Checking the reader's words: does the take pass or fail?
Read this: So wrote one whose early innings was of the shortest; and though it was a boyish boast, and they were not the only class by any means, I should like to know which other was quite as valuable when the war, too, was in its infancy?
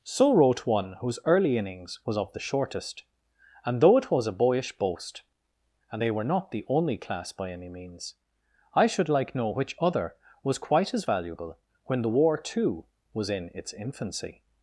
fail